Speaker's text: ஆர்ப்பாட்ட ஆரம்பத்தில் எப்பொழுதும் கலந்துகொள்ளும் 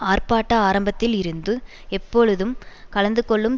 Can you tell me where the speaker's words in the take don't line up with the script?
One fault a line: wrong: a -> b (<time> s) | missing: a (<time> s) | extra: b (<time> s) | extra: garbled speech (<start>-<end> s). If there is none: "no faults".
extra: இருந்து (1.1 s)